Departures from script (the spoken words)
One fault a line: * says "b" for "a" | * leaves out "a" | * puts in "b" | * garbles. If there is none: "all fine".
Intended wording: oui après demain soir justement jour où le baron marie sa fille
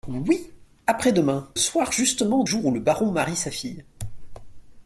all fine